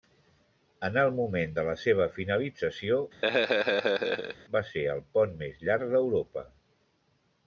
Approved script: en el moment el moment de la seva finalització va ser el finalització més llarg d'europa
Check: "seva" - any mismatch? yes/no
no